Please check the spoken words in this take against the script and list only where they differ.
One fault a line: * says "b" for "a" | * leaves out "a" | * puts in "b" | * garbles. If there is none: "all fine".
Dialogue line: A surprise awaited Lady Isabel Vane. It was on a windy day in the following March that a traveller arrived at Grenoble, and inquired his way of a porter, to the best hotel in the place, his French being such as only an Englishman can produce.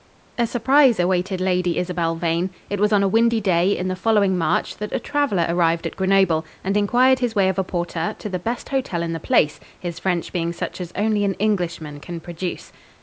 all fine